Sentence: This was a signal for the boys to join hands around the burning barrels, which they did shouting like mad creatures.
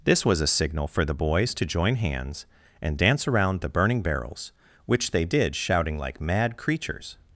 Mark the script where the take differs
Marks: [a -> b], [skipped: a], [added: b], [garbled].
This was a signal for the boys to join hands [added: and dance] around the burning barrels, which they did shouting like mad creatures.